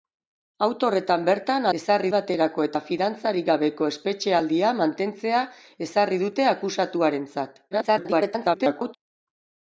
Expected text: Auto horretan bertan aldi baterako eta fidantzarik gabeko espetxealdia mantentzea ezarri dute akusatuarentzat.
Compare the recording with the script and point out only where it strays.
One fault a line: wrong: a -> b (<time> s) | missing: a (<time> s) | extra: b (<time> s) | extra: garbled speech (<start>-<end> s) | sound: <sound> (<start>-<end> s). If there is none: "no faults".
wrong: aldi -> ezarri (1.8 s)
extra: garbled speech (7.7-9.0 s)